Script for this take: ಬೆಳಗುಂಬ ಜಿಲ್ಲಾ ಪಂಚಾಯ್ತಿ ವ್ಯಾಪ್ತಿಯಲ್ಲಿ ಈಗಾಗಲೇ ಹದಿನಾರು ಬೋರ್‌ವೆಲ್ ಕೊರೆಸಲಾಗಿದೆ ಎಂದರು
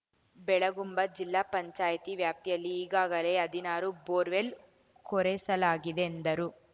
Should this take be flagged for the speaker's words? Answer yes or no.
no